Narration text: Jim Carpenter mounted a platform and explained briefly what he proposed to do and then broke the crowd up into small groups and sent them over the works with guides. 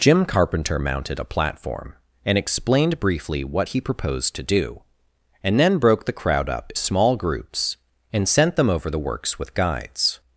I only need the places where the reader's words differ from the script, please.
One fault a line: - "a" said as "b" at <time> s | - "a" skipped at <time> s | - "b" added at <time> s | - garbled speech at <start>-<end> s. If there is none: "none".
- "into" skipped at 6.7 s